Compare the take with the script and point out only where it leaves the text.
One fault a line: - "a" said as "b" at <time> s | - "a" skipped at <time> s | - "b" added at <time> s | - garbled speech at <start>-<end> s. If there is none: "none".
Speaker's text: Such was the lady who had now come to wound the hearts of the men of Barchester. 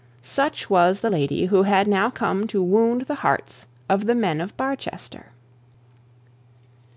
none